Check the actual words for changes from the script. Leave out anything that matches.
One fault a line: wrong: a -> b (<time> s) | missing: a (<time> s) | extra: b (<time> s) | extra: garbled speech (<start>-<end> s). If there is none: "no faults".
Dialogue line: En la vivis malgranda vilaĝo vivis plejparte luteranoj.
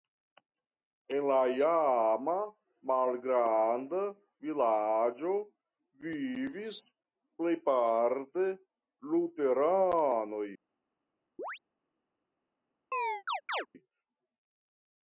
wrong: vivis -> iama (1.6 s)